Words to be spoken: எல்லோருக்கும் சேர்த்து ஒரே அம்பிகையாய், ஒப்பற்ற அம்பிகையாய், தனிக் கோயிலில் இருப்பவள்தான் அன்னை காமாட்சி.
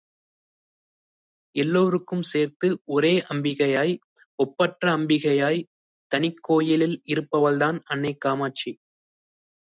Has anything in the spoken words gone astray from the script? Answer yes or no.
no